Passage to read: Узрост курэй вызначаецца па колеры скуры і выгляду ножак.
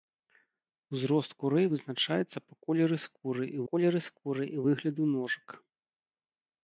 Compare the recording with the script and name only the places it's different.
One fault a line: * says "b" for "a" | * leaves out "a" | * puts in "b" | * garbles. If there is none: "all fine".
* puts in "колеры скуры і"